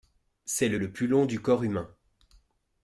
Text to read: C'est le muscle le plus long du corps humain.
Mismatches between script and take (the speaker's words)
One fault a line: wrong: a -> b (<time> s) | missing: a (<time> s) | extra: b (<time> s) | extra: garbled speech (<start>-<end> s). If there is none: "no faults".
missing: muscle (0.8 s)